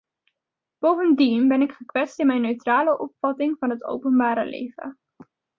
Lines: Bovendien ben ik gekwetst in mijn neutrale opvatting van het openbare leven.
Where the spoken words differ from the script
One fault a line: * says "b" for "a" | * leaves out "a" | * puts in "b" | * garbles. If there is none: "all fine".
all fine